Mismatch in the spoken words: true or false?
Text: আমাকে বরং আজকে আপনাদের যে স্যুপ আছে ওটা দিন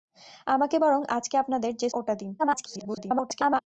true